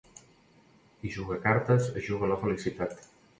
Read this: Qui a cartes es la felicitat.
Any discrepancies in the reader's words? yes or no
yes